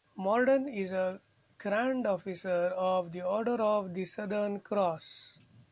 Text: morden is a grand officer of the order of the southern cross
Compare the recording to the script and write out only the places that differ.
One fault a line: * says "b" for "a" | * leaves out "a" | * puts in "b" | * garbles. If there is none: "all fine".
all fine